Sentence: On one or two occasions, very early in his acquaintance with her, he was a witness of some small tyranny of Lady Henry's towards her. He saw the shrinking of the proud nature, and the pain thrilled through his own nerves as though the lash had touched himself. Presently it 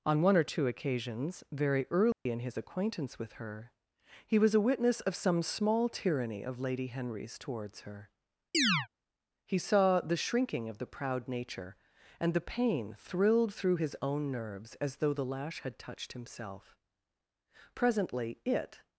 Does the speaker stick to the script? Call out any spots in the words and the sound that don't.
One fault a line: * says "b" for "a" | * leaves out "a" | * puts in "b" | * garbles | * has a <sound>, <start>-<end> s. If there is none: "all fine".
* has a dropout, 2.1-2.3 s
* has a chirp, 8.5-8.9 s